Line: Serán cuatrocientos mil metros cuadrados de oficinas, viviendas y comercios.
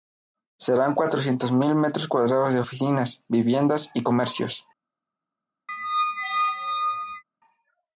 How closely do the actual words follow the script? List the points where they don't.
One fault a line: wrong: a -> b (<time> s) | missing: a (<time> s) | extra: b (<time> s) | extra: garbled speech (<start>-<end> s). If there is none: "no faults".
no faults